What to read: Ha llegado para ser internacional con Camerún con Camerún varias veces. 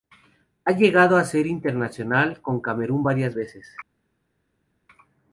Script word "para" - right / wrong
wrong